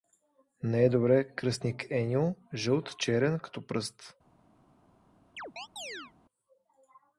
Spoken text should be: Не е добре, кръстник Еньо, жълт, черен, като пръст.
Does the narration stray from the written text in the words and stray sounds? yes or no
yes